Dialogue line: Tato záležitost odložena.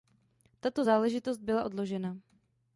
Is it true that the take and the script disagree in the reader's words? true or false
true